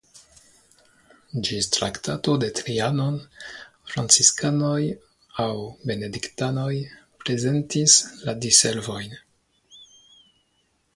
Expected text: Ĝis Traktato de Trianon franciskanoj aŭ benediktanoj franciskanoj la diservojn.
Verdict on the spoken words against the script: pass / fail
fail